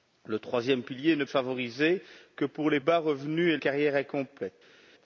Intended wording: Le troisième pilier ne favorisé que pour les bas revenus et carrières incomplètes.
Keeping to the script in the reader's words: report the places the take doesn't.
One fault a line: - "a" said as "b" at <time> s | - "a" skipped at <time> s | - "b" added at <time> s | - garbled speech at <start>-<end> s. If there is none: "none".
none